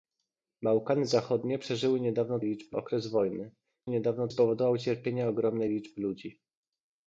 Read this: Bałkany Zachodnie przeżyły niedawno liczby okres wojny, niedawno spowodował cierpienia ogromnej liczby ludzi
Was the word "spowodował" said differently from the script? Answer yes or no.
no